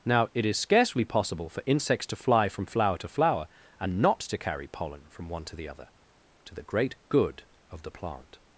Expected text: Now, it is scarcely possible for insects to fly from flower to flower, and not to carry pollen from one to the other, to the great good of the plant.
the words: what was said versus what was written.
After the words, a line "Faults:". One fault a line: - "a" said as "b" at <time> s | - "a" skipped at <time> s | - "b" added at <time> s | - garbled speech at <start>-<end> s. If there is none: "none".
Now, it is scarcely possible for insects to fly from flower to flower, and not to carry pollen from one to the other, to the great good of the plant.
Faults:
none